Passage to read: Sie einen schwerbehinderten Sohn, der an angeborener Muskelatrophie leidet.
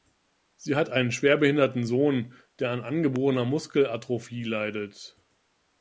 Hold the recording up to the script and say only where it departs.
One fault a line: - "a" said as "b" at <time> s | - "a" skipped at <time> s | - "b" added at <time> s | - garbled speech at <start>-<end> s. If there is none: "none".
- "hat" added at 0.8 s